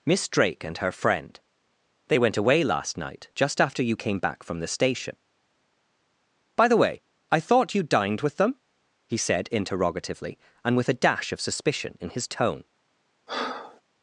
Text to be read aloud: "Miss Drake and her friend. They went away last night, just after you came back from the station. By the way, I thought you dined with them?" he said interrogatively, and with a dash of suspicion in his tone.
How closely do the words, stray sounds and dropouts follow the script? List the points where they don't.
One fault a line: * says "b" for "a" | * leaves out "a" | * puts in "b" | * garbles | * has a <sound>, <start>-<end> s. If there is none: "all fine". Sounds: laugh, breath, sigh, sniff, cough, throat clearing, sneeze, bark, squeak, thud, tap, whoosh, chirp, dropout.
* has a breath, 13.3-13.8 s